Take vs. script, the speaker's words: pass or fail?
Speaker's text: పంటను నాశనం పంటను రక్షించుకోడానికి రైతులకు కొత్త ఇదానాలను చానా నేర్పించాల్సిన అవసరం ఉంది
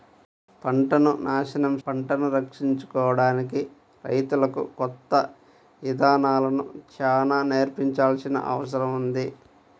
pass